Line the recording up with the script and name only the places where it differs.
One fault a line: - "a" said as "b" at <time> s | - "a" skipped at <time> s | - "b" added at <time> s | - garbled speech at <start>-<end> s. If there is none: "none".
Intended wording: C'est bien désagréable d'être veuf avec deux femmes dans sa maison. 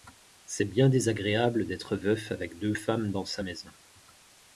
none